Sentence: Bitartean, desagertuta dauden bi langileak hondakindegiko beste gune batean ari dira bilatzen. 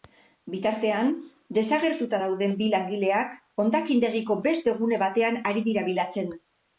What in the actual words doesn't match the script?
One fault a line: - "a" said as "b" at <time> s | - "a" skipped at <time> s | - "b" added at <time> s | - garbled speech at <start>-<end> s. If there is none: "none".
none